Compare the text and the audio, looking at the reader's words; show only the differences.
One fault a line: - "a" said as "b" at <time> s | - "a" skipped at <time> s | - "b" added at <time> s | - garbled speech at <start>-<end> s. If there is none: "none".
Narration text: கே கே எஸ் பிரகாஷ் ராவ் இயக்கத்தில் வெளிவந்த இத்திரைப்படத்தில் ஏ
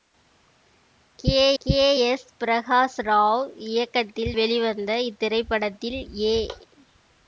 none